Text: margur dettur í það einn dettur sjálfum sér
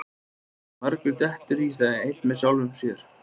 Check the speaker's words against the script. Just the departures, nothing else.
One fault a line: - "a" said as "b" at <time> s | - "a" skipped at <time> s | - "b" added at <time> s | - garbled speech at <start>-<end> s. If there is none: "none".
- "dettur" said as "með" at 2.3 s